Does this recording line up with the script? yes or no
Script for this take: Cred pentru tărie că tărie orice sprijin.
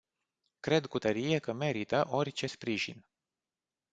no